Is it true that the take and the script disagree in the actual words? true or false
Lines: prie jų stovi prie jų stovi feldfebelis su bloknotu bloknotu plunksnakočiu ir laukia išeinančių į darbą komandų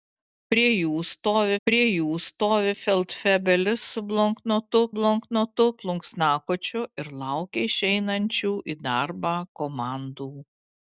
false